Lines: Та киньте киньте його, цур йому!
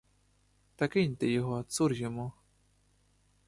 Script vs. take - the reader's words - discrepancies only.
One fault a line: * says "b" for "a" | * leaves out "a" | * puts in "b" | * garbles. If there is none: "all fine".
* leaves out "киньте"